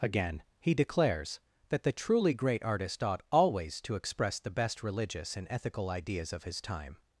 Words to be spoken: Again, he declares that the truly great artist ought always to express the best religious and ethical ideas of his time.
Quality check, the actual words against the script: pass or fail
pass